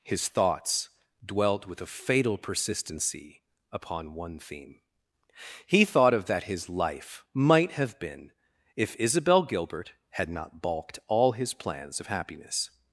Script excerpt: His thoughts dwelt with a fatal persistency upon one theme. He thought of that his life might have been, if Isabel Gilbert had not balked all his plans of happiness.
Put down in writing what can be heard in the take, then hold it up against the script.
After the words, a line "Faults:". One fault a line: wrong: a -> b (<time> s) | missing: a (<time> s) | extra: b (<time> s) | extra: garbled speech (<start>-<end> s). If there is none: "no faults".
His thoughts dwelt with a fatal persistency upon one theme. He thought of that his life might have been, if Isabel Gilbert had not balked all his plans of happiness.
Faults:
no faults